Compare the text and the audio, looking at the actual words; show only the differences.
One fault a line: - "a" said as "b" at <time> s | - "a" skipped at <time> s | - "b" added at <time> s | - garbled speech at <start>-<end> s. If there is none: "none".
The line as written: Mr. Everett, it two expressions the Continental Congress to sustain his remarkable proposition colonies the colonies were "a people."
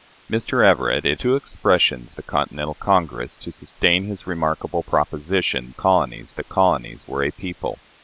none